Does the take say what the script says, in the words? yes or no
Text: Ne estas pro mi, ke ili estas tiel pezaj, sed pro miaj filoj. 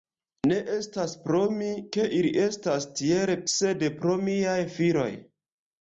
no